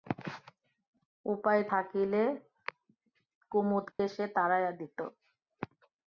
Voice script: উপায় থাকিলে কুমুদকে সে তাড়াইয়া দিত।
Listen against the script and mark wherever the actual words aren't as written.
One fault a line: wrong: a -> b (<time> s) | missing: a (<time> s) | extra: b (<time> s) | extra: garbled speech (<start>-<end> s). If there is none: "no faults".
no faults